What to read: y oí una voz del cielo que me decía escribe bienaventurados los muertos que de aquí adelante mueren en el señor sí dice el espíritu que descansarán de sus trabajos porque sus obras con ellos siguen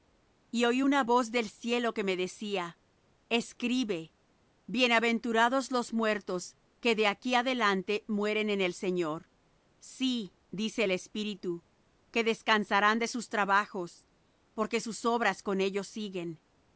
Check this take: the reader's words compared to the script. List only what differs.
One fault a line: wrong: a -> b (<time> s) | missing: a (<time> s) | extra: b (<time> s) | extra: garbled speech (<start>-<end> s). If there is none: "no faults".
no faults